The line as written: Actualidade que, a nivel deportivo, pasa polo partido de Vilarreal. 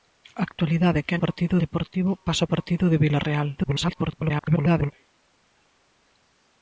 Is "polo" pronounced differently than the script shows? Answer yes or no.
yes